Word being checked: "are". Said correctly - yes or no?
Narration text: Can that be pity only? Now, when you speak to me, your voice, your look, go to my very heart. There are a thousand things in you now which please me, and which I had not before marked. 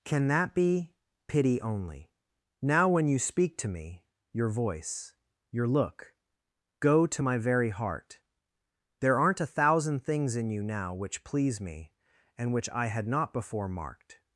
no